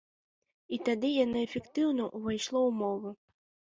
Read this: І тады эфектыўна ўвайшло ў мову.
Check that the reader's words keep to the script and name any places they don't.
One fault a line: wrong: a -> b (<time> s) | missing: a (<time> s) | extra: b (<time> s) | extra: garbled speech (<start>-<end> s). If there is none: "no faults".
extra: яно (1.2 s)